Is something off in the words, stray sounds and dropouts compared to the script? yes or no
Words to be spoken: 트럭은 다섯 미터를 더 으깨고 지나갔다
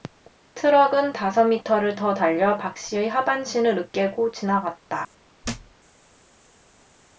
yes